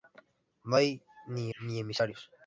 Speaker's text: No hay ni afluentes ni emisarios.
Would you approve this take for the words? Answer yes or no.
no